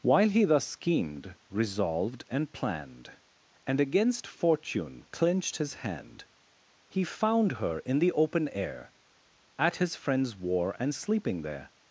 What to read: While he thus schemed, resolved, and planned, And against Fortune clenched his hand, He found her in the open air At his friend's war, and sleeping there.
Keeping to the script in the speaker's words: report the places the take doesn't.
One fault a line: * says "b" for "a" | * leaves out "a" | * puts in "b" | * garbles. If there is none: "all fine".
all fine